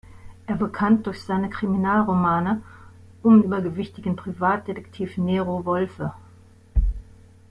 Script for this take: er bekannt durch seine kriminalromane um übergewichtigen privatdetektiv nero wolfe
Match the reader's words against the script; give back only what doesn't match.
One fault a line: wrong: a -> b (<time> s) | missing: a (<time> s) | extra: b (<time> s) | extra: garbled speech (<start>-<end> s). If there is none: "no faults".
no faults